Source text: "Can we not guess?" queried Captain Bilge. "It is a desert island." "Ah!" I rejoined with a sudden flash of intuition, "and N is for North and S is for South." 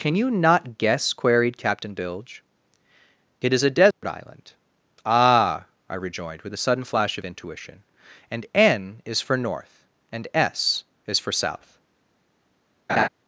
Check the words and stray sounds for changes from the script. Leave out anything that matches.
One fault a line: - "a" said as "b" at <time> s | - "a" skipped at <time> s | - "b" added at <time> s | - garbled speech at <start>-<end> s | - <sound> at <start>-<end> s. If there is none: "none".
- "we" said as "you" at 0.1 s
- dropout at 3.9-4.0 s
- laugh at 12.9-13.1 s